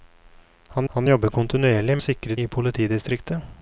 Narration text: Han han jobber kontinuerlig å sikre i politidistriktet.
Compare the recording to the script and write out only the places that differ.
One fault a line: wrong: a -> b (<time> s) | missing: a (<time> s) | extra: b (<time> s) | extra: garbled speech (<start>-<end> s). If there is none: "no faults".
no faults